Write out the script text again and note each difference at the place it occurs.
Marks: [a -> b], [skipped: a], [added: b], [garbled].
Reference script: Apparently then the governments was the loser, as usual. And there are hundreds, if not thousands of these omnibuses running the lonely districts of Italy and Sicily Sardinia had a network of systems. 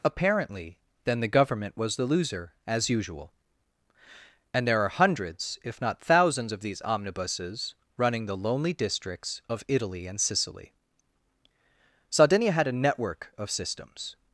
Apparently then the [governments -> government] was the loser, as usual. And there are hundreds, if not thousands of these omnibuses running the lonely districts of Italy and Sicily Sardinia had a network of systems.